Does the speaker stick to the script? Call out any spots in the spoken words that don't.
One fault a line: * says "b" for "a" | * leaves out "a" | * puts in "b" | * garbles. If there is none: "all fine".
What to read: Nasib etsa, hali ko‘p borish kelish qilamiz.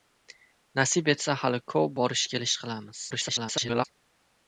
* garbles